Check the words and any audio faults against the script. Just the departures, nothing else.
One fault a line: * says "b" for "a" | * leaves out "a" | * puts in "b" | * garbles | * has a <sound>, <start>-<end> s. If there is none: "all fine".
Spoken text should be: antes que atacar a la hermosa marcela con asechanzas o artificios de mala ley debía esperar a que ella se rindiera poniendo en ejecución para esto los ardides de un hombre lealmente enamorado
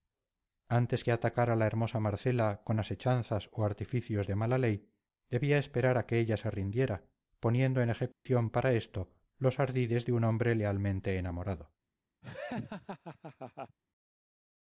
* has a dropout, 8.1-8.3 s
* has a laugh, 12.2-13.8 s